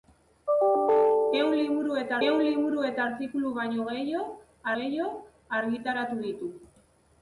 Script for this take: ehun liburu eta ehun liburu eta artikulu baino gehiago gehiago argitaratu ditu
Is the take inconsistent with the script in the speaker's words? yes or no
no